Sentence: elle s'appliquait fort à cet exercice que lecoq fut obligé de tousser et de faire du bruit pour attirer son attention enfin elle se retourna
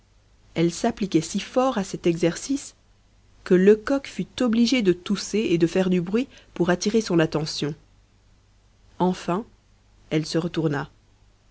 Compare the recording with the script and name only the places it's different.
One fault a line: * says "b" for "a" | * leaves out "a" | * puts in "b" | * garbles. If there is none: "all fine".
* puts in "si"